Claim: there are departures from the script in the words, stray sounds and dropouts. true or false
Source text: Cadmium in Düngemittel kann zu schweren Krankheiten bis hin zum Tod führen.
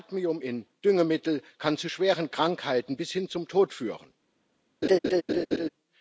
true